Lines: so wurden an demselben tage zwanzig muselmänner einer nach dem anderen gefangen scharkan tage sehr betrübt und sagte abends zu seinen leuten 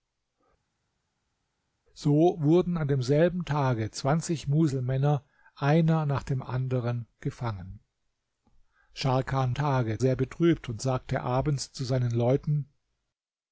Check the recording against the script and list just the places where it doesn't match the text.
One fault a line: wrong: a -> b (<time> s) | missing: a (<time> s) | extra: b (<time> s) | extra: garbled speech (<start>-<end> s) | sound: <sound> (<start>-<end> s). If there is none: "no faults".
no faults